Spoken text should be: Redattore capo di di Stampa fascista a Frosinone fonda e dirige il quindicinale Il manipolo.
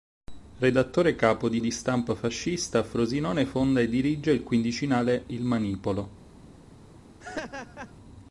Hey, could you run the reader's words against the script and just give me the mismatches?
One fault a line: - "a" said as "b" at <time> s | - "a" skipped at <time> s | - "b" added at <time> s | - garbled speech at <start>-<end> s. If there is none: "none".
none